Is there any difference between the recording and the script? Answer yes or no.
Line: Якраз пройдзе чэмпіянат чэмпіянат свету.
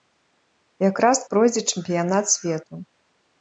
yes